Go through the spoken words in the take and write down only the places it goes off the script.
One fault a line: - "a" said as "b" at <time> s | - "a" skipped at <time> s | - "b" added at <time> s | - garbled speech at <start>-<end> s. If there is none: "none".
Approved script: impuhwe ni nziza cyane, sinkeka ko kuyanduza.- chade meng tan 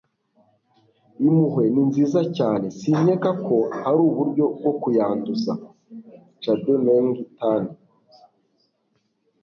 - "hari uburyo bwo" added at 3.8 s